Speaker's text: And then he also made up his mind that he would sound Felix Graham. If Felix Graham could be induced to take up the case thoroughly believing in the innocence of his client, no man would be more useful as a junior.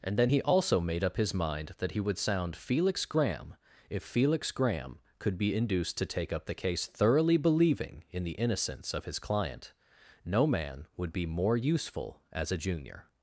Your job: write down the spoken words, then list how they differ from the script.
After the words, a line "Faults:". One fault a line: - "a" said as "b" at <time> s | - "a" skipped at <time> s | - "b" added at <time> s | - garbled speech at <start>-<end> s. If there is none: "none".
And then he also made up his mind that he would sound Felix Graham. If Felix Graham could be induced to take up the case thoroughly believing in the innocence of his client, no man would be more useful as a junior.
Faults:
none